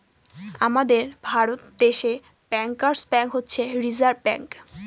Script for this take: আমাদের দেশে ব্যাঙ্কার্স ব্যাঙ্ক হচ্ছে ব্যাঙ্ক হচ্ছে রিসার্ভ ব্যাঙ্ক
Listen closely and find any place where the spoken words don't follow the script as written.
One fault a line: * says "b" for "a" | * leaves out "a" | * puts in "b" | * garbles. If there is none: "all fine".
* puts in "ভারত"
* leaves out "ব্যাঙ্ক হচ্ছে"